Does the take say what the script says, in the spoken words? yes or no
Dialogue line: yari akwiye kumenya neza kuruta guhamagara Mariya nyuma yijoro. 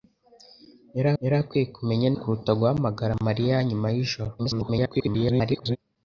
no